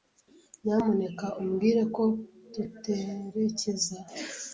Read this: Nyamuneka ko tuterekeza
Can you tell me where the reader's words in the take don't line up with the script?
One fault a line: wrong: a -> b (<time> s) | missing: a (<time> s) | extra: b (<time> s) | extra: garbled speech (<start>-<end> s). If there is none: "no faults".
extra: umbwire (1.4 s)